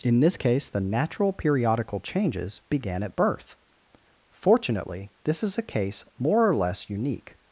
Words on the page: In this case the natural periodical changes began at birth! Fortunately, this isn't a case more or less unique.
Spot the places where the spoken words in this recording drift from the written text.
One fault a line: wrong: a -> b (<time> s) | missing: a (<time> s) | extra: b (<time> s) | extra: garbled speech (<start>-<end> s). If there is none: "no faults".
wrong: isn't -> is (5.4 s)